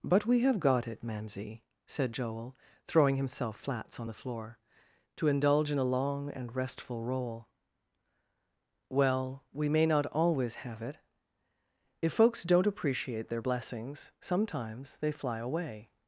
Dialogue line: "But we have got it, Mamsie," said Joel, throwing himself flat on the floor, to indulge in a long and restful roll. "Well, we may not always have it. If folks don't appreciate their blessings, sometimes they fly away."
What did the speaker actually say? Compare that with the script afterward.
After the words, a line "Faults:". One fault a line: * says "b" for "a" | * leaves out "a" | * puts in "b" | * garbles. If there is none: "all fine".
"But we have got it, Mamsie," said Joel, throwing himself flats on the floor, to indulge in a long and restful roll. "Well, we may not always have it. If folks don't appreciate their blessings, sometimes they fly away."
Faults:
* says "flats" for "flat"